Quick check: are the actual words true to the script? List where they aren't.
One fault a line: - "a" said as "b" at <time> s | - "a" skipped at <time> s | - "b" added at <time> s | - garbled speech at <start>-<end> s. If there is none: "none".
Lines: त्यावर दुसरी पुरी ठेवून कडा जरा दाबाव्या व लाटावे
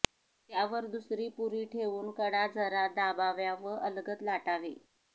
- "अलगद" added at 3.8 s